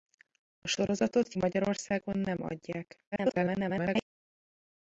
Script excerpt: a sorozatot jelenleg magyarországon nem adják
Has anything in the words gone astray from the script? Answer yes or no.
yes